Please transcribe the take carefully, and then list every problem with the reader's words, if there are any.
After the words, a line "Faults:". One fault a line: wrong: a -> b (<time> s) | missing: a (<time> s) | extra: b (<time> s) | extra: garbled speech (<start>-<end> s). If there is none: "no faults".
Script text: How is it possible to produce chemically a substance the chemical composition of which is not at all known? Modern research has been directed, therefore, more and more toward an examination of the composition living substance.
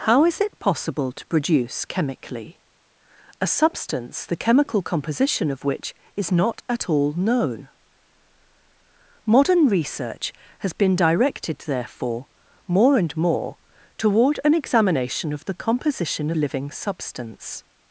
How is it possible to produce chemically a substance the chemical composition of which is not at all known? Modern research has been directed, therefore, more and more toward an examination of the composition living substance.
Faults:
no faults